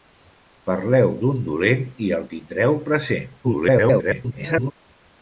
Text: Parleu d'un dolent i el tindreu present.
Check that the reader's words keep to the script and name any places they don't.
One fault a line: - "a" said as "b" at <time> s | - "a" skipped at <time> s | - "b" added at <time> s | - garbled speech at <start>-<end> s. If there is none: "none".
- garbled speech at 3.4-4.7 s